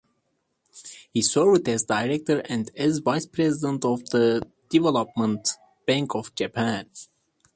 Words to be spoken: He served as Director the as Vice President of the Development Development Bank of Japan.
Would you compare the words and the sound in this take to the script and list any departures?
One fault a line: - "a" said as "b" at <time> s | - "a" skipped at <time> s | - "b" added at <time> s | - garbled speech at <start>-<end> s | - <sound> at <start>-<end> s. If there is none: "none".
- "the" said as "and" at 2.5 s
- "Development" skipped at 5.5 s